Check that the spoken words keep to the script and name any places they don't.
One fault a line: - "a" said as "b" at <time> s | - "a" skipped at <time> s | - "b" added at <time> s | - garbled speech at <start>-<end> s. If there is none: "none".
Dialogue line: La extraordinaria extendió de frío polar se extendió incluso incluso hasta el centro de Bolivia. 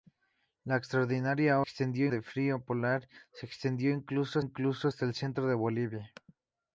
none